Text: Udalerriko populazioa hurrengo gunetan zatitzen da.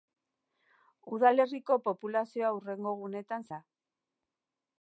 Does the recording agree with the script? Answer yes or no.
no